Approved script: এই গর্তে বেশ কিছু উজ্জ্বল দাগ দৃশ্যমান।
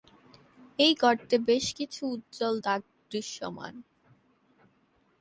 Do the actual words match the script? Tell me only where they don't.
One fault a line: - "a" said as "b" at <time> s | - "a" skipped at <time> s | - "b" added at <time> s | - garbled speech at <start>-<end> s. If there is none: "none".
none